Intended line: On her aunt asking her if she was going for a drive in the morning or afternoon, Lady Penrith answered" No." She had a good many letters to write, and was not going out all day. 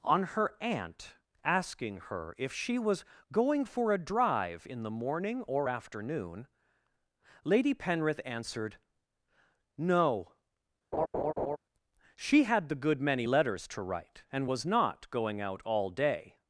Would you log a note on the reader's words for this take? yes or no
yes